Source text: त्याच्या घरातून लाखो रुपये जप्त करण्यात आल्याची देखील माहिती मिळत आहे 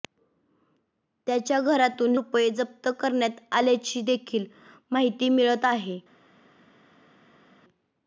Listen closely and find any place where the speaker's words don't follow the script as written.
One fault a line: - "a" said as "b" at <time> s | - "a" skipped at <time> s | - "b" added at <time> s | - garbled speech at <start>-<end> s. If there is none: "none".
- "लाखो" skipped at 2.1 s